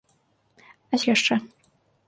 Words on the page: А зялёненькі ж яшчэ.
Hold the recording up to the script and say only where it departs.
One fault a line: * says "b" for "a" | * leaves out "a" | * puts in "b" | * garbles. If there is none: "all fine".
* leaves out "зялёненькі"